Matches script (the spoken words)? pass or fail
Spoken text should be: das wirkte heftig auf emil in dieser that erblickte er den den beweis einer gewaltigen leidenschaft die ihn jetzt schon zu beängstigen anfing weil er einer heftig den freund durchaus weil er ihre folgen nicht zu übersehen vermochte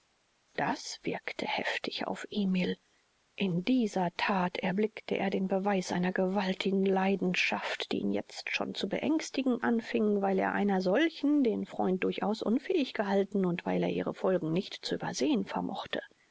fail